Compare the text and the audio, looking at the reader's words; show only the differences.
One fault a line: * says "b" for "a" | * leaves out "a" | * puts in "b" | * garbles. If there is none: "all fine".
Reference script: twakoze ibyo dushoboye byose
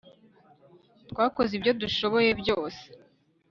all fine